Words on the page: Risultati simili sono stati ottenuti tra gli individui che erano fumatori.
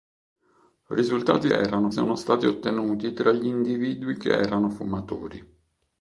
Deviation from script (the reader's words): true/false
true